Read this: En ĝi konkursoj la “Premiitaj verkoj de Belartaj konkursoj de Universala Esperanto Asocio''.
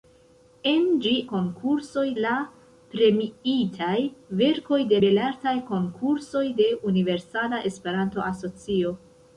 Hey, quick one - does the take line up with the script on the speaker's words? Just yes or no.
yes